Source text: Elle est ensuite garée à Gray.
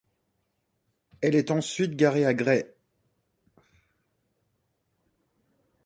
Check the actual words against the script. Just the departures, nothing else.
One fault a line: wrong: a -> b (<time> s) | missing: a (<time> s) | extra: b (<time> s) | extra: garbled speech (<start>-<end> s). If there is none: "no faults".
no faults